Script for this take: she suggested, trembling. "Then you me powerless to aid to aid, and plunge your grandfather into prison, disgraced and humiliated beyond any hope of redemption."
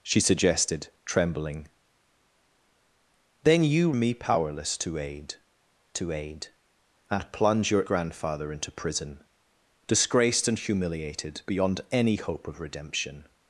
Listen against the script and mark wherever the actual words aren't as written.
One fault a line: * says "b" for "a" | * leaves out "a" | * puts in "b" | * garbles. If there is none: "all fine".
all fine